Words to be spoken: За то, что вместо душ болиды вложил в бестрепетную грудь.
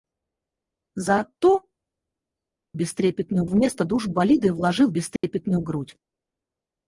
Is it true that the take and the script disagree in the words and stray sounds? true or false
true